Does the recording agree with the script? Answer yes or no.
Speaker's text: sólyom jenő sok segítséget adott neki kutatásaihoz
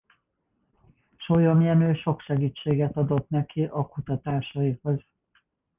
no